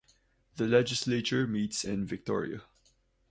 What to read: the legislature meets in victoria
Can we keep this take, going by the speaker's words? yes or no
yes